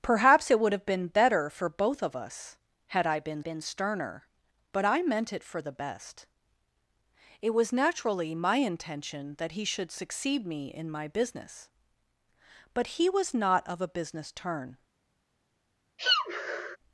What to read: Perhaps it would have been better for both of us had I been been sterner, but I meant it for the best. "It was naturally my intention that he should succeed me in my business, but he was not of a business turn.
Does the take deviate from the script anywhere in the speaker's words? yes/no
no